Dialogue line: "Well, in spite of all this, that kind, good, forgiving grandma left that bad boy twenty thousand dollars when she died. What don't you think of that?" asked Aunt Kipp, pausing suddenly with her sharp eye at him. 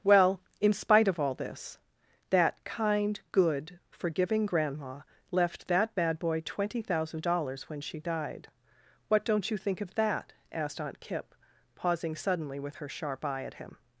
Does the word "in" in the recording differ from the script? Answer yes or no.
no